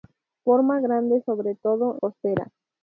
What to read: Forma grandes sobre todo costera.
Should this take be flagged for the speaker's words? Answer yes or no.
no